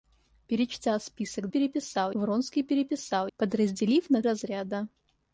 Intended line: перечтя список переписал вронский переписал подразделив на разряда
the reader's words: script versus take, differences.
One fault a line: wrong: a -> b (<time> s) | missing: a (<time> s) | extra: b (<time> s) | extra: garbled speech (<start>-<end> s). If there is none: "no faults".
no faults